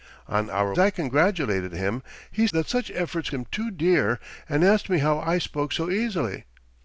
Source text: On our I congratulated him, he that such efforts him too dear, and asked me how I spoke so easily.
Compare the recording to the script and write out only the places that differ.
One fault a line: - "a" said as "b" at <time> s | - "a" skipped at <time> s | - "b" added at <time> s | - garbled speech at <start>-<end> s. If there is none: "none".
none